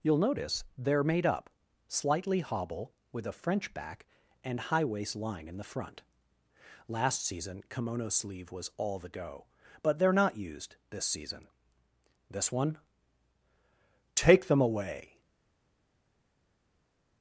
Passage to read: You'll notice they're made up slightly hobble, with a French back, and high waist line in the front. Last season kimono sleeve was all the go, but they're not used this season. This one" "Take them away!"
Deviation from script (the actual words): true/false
false